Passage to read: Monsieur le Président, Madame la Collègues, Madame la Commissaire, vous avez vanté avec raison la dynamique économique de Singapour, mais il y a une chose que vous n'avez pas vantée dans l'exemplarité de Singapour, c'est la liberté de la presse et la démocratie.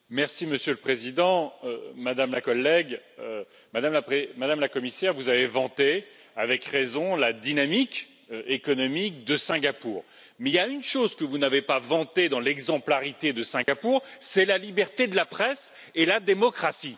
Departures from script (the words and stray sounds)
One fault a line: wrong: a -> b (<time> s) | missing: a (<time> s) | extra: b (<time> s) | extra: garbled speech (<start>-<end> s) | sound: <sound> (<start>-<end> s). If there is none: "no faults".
sound: dropout (13.6-13.7 s)